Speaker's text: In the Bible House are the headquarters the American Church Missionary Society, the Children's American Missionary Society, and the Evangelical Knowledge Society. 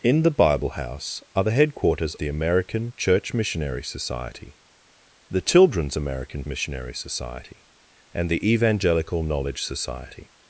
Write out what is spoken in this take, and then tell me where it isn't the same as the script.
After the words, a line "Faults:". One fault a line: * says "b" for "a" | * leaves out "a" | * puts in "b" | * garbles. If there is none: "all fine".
In the Bible House are the headquarters the American Church Missionary Society, the Children's American Missionary Society, and the Evangelical Knowledge Society.
Faults:
all fine